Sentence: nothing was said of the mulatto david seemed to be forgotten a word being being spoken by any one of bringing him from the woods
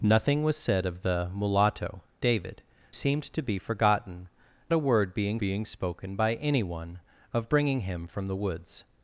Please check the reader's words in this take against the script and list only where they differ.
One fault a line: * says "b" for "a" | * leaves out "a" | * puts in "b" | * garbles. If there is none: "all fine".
all fine